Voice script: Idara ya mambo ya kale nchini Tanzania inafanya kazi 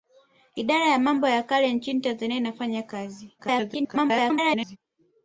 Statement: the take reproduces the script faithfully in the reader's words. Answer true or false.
false